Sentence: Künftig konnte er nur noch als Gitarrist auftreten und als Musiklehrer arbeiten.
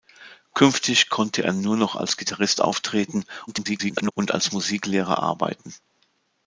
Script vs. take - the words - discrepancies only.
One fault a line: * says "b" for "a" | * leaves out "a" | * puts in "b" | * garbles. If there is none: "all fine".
* garbles